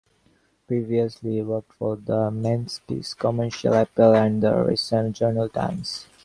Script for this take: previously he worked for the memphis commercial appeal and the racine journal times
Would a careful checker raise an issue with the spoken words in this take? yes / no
no